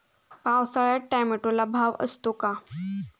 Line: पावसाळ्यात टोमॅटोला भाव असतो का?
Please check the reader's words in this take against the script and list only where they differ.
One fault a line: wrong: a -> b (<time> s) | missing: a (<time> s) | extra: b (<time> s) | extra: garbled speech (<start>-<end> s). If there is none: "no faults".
no faults